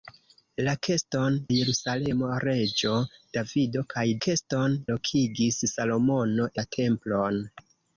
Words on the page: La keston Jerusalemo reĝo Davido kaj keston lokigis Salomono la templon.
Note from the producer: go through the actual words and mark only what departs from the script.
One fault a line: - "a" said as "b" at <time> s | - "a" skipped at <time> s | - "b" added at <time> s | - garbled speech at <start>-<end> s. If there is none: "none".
none